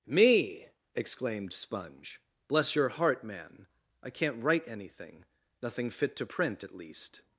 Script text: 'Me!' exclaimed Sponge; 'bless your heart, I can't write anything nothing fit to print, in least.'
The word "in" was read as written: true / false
false